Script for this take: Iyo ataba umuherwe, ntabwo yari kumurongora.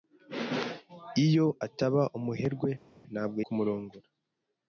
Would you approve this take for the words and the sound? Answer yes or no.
no